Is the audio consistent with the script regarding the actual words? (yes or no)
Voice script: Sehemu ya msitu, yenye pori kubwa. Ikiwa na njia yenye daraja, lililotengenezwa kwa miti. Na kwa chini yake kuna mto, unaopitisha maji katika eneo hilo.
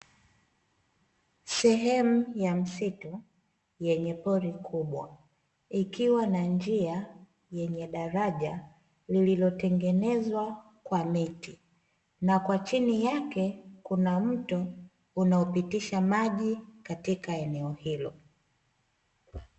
yes